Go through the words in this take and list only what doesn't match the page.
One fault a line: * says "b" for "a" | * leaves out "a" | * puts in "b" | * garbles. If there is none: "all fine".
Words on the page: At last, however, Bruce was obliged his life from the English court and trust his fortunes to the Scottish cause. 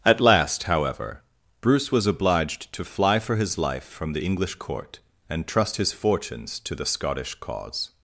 * puts in "to fly for"